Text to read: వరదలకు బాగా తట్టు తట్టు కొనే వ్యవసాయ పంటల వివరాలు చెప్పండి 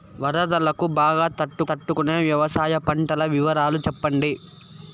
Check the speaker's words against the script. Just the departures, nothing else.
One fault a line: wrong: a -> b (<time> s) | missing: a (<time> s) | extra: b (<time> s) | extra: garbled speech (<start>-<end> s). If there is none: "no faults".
no faults